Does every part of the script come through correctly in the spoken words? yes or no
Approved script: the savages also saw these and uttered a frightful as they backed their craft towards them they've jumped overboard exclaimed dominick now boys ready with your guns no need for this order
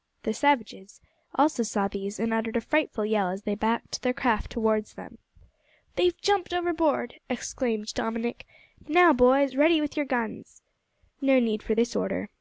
no